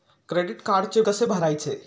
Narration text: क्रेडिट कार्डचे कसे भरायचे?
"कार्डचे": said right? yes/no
yes